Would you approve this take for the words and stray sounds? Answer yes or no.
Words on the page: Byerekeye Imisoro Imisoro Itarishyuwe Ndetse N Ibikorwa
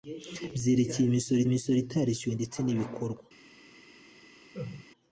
no